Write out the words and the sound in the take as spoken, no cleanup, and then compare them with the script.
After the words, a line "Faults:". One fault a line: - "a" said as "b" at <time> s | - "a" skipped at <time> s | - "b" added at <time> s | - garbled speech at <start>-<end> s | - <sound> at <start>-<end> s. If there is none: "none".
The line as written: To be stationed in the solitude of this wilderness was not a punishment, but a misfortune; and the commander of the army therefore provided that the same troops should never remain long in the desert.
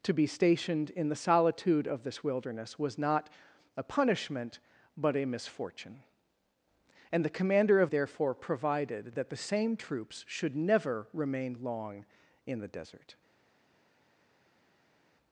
To be stationed in the solitude of this wilderness was not a punishment, but a misfortune; and the commander of therefore provided that the same troops should never remain long in the desert.
Faults:
- "the army" skipped at 7.9 s